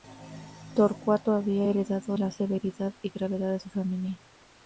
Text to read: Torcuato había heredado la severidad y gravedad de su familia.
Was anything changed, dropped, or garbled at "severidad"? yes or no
no